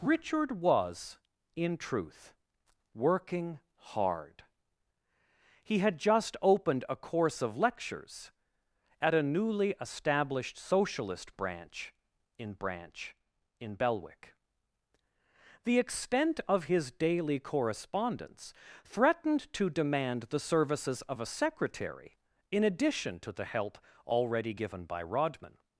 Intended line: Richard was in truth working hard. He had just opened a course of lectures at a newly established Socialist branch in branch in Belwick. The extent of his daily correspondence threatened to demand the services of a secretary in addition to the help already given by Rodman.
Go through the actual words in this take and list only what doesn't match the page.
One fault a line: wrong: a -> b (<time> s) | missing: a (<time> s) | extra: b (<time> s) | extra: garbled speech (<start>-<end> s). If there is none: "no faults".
no faults